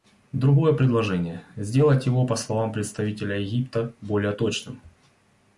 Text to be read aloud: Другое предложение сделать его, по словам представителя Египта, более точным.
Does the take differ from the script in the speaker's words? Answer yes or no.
no